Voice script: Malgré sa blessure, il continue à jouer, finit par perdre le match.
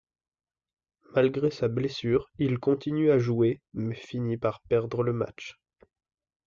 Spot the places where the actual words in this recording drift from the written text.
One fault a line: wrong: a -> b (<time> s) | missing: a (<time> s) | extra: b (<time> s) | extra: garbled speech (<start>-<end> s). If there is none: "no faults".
extra: mais (3.7 s)